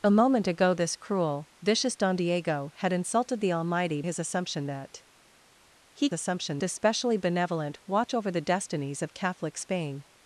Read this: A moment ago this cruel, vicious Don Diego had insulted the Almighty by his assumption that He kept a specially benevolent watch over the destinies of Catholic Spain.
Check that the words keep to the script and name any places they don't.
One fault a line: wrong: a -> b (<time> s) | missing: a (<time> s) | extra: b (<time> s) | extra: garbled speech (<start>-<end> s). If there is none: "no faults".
missing: by (4.0 s)
wrong: kept -> assumption (6.1 s)